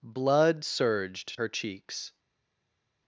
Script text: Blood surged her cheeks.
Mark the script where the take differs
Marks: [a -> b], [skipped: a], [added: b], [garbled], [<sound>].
Blood surged her cheeks.